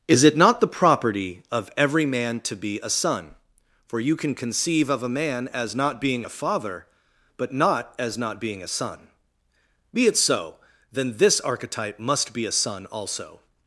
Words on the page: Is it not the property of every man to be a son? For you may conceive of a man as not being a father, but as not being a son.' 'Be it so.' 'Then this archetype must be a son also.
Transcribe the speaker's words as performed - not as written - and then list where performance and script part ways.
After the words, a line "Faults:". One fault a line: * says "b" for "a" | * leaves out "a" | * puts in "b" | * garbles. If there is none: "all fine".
Is it not the property of every man to be a son? For you can conceive of a man as not being a father, but not as not being a son.' 'Be it so.' 'Then this archetype must be a son also.
Faults:
* says "can" for "may"
* puts in "not"